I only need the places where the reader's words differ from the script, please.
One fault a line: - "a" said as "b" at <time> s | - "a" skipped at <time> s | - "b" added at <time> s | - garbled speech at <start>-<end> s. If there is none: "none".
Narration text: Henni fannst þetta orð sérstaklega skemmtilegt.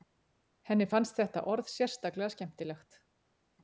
none